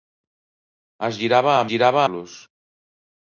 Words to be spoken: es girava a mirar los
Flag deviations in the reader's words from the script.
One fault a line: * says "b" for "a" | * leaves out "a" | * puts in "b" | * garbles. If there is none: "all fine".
* says "girava" for "mirar"